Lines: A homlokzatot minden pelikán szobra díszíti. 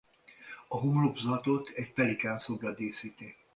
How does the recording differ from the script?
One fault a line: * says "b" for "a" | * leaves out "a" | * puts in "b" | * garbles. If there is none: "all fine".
* says "egy" for "minden"